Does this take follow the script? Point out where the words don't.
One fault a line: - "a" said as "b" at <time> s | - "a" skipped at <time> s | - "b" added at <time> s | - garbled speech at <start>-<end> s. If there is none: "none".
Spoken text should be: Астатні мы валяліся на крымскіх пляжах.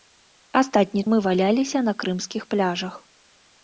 none